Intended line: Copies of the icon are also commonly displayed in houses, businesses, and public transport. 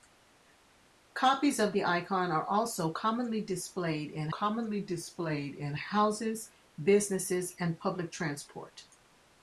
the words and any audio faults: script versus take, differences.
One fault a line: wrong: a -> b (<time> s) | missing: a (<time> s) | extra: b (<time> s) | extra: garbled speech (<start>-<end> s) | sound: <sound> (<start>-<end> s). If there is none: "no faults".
extra: commonly displayed in (4.3 s)